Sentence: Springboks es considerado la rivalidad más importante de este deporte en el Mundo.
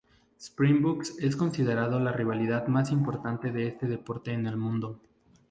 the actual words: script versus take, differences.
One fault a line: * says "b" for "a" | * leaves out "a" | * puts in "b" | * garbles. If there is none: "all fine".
all fine